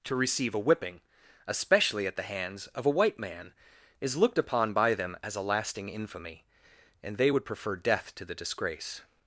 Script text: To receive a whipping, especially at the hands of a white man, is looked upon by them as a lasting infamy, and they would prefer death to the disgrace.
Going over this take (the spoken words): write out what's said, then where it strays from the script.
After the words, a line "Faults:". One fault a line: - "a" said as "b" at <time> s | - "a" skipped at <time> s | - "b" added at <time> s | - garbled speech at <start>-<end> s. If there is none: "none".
To receive a whipping, especially at the hands of a white man, is looked upon by them as a lasting infamy, and they would prefer death to the disgrace.
Faults:
none